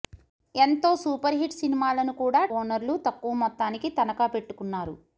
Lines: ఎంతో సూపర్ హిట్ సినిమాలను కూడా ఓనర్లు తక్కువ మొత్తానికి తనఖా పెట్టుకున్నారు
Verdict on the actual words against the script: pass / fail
pass